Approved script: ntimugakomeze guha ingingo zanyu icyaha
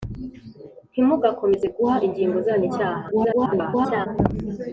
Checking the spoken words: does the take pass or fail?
fail